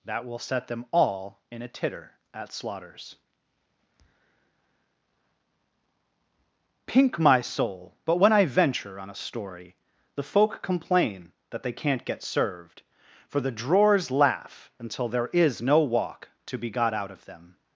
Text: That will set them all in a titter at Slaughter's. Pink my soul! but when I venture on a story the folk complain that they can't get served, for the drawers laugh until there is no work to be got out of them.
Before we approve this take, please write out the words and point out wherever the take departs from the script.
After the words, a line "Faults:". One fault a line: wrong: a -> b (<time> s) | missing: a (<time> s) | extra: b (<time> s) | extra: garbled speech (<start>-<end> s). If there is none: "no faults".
That will set them all in a titter at Slaughter's. Pink my soul! but when I venture on a story the folk complain that they can't get served, for the drawers laugh until there is no walk to be got out of them.
Faults:
wrong: work -> walk (15.8 s)